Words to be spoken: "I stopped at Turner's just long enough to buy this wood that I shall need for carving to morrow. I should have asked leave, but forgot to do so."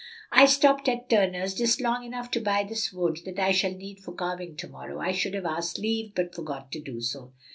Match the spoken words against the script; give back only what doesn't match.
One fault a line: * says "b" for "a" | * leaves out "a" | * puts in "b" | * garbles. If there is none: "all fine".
all fine